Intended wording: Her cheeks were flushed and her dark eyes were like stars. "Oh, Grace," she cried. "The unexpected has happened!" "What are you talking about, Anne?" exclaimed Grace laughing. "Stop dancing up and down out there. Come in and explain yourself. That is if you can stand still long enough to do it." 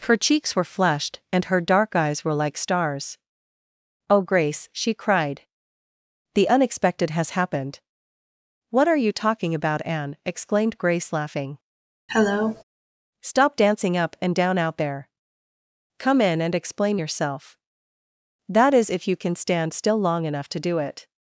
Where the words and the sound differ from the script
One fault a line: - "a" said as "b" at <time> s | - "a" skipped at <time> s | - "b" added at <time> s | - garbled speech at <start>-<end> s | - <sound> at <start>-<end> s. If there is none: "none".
- cough at 12.1-12.6 s